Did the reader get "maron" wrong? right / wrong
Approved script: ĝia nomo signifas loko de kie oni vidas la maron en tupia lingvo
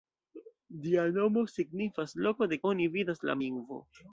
wrong